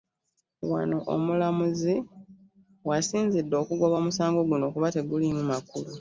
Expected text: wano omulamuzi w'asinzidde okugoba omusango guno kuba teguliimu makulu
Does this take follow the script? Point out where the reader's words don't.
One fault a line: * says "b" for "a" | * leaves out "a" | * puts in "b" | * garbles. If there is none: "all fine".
all fine